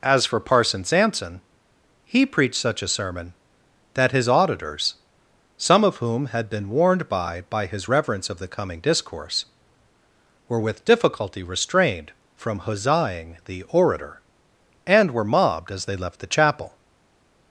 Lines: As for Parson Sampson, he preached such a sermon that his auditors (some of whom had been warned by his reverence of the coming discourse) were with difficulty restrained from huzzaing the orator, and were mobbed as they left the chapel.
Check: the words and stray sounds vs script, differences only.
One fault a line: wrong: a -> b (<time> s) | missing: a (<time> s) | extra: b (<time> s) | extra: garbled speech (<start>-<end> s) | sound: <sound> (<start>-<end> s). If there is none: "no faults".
extra: by (7.4 s)